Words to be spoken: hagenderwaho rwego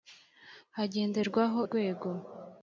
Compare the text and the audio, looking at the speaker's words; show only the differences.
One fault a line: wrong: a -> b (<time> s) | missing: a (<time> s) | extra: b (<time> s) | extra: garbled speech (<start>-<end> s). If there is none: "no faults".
no faults